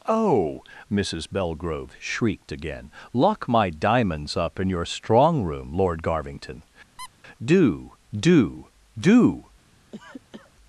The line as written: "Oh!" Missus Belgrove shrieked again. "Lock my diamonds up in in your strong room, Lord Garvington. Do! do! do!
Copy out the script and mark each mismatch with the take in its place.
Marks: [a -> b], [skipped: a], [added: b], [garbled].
"Oh!" Missus Belgrove shrieked again. "Lock my diamonds up in [skipped: in] your strong room, Lord Garvington. Do! do! do!